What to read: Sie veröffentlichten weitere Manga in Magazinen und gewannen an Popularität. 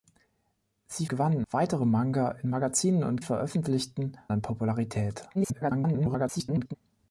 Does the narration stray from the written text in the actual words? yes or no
yes